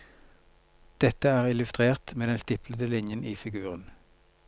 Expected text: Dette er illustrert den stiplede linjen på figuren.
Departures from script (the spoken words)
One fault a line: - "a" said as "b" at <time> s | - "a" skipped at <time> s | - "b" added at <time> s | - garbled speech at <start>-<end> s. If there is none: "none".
- "med" added at 2.1 s
- "på" said as "i" at 3.2 s